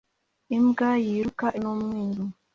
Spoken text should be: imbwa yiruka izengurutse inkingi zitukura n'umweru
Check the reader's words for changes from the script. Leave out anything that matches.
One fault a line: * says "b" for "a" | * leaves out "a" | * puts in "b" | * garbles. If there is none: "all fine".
* leaves out "izengurutse inkingi zitukura"